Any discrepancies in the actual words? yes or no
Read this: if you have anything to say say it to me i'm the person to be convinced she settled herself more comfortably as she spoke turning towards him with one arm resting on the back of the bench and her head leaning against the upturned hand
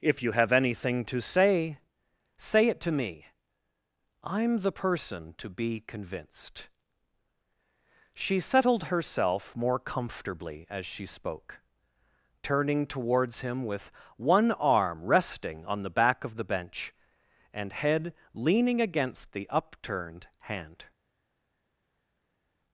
yes